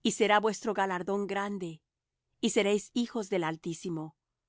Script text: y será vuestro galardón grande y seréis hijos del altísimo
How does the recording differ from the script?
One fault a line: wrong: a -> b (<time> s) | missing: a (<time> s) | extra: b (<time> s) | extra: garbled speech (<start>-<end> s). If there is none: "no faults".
no faults